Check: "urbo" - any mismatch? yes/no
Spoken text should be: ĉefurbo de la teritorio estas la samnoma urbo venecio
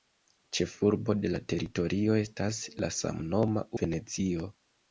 yes